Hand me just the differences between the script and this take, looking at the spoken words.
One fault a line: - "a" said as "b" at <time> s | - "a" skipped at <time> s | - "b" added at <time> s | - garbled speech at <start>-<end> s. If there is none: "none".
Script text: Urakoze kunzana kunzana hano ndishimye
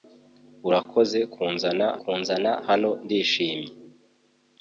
none